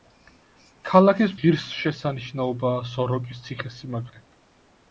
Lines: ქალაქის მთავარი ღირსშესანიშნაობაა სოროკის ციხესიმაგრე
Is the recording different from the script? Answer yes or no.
yes